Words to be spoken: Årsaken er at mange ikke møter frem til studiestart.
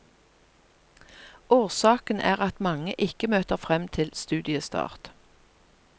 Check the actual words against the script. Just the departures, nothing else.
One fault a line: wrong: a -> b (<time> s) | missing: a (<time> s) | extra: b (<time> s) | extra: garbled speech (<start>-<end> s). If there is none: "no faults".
no faults